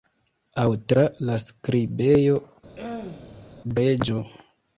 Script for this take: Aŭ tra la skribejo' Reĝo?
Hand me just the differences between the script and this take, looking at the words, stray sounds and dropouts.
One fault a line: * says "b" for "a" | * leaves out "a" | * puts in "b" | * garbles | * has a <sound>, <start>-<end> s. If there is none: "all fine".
* has a throat clearing, 2.8-3.5 s